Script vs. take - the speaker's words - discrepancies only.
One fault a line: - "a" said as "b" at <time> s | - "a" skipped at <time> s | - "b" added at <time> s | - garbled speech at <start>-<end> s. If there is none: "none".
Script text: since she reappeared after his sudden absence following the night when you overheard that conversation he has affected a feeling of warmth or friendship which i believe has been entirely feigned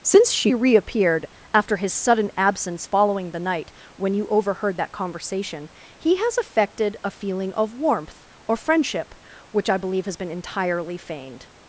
none